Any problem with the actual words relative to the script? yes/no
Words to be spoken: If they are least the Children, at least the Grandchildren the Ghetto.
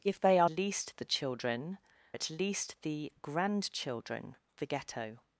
no